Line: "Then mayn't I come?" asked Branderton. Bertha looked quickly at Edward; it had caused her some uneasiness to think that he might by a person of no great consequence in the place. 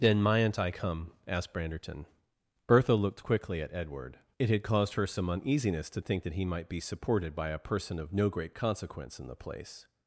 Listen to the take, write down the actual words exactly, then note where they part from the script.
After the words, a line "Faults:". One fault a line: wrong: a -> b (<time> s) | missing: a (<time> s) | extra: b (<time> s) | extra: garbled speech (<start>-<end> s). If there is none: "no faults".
"Then mayn't I come?" asked Branderton. Bertha looked quickly at Edward; it had caused her some uneasiness to think that he might be supported by a person of no great consequence in the place.
Faults:
extra: be supported (6.7 s)